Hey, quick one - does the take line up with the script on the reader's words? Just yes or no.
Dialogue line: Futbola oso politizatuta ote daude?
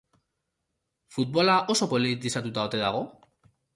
no